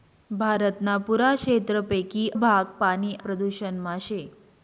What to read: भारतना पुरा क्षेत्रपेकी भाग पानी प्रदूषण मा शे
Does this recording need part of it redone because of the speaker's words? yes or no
no